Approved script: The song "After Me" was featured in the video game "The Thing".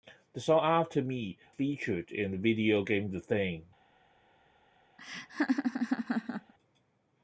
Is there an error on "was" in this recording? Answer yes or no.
yes